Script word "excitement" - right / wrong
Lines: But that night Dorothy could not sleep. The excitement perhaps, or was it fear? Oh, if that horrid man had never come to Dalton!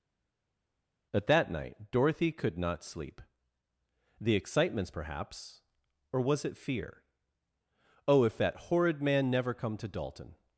wrong